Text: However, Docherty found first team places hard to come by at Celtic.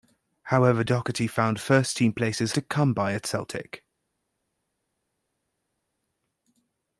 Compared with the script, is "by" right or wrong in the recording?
right